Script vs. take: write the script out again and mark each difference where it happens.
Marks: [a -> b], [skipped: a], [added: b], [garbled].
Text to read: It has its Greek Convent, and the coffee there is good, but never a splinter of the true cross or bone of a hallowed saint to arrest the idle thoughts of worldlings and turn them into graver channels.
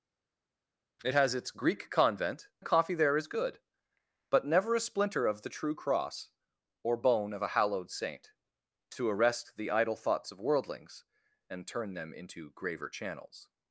It has its Greek Convent, [skipped: and] the coffee there is good, but never a splinter of the true cross or bone of a hallowed saint to arrest the idle thoughts of worldlings and turn them into graver channels.